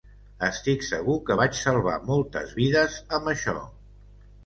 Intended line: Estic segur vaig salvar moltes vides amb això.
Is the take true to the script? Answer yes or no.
no